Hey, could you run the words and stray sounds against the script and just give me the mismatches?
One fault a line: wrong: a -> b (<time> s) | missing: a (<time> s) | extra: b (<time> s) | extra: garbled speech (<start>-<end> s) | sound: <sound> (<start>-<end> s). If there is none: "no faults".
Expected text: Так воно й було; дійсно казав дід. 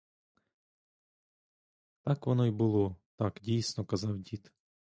extra: так (3.2 s)